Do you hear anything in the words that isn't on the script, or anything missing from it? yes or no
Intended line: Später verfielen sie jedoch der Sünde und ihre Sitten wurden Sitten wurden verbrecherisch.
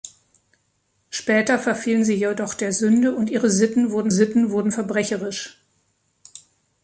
no